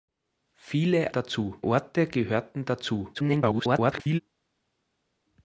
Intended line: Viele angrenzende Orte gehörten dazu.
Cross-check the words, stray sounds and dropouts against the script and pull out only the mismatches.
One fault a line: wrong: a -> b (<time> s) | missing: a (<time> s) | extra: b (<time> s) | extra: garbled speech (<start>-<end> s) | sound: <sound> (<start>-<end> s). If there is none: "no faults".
wrong: angrenzende -> dazu (1.1 s)
extra: garbled speech (3.1-4.2 s)